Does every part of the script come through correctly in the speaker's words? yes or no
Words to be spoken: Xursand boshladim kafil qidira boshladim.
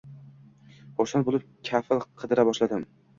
no